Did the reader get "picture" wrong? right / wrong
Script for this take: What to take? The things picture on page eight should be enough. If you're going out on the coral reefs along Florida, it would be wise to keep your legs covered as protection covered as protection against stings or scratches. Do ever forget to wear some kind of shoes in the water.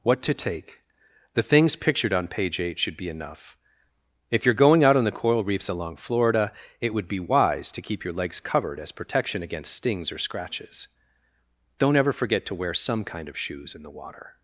wrong